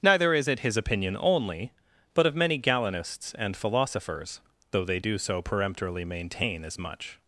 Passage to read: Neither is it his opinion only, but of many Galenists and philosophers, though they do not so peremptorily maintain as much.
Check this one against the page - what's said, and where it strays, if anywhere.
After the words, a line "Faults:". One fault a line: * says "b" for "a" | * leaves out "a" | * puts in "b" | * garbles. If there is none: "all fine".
Neither is it his opinion only, but of many Galenists and philosophers, though they do so peremptorily maintain as much.
Faults:
* leaves out "not"